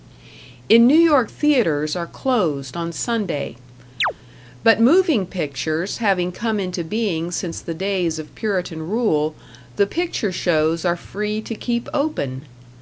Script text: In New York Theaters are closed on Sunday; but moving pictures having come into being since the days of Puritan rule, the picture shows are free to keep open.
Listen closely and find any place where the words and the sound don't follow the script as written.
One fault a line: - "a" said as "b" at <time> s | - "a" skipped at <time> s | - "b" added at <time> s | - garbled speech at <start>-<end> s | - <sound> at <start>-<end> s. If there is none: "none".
- chirp at 4.0-4.1 s